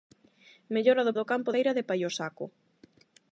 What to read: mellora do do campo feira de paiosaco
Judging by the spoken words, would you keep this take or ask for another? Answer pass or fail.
pass